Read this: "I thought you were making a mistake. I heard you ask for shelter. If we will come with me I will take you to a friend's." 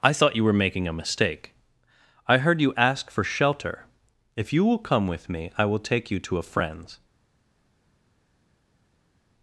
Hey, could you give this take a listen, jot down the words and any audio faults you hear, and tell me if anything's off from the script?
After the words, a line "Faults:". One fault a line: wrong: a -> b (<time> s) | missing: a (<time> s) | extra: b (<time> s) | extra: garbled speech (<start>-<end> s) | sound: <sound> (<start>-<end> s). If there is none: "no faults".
"I thought you were making a mistake. I heard you ask for shelter. If you will come with me I will take you to a friend's."
Faults:
wrong: we -> you (4.5 s)